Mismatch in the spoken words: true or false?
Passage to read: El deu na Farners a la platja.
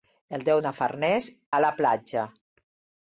false